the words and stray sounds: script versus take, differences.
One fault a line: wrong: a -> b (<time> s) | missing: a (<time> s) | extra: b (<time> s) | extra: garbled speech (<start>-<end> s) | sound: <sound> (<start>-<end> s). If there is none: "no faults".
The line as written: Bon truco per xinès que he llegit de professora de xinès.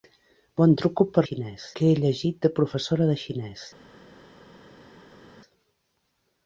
no faults